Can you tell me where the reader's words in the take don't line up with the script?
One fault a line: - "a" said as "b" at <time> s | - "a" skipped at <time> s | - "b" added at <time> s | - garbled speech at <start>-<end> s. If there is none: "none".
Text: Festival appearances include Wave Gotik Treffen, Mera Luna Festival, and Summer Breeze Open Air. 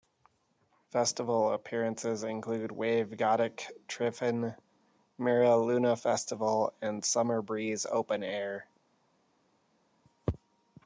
none